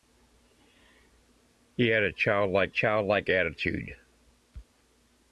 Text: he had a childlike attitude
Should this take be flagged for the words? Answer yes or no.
yes